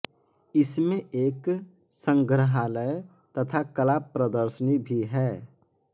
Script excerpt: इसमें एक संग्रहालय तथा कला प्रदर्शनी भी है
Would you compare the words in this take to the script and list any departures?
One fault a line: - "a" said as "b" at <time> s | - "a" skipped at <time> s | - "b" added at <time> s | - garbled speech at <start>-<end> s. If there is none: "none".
none